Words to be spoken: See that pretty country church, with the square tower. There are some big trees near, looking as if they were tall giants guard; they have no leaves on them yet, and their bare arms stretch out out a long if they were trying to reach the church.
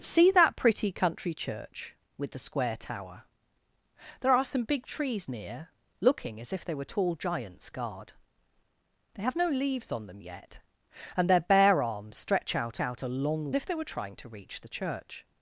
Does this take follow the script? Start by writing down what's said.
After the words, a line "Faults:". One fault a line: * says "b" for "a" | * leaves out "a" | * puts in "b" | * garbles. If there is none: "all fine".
See that pretty country church, with the square tower. There are some big trees near, looking as if they were tall giants guard; they have no leaves on them yet, and their bare arms stretch out out a long if they were trying to reach the church.
Faults:
all fine